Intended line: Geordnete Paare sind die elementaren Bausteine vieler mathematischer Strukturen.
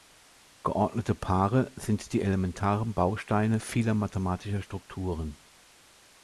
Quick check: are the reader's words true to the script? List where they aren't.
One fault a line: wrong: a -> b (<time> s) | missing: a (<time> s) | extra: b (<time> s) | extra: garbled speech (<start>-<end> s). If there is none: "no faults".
no faults